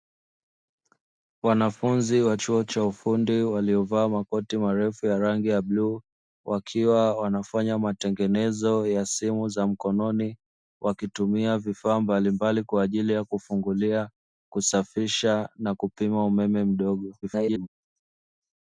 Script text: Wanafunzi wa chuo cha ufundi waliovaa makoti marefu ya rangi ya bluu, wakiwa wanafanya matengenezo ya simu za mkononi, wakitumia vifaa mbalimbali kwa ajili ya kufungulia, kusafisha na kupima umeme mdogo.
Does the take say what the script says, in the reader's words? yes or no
no